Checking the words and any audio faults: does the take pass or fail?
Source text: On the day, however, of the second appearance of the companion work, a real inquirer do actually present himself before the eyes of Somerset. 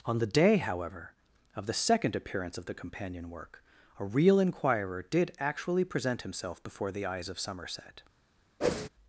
fail